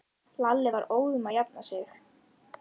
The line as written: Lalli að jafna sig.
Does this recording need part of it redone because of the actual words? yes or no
yes